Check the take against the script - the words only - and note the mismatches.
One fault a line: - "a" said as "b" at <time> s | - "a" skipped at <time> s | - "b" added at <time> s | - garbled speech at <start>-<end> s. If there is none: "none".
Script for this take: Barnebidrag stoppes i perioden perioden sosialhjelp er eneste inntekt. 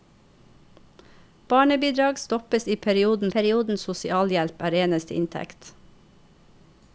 none